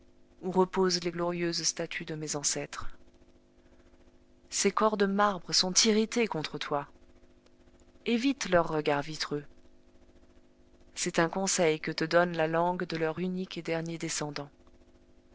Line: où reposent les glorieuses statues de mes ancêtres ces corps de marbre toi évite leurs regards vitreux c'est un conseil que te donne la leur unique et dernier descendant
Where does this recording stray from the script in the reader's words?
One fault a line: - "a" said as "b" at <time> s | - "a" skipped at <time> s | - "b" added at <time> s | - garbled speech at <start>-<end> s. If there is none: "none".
- "sont irrités contre" added at 5.5 s
- "langue de" added at 12.5 s